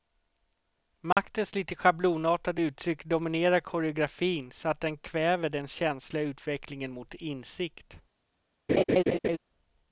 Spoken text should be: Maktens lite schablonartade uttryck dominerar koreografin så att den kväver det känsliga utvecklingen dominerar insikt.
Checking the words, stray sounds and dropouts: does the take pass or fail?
fail